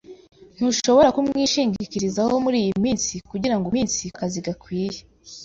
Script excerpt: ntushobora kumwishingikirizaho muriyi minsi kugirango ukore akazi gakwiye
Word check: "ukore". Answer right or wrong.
wrong